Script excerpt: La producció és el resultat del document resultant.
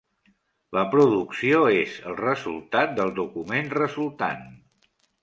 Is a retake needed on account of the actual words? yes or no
no